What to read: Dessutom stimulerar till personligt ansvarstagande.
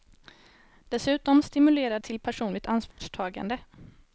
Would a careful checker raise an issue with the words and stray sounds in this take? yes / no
yes